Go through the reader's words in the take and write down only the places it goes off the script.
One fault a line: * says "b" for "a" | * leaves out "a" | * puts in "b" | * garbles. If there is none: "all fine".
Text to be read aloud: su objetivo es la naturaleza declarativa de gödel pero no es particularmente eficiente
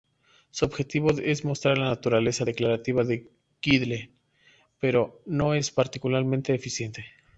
* puts in "mostrar"